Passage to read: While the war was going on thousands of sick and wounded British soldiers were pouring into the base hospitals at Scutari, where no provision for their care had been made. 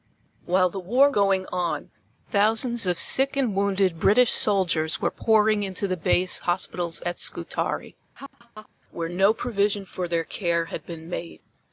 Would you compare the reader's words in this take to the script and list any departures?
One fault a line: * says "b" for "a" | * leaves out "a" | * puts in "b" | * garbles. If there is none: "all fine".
* leaves out "was"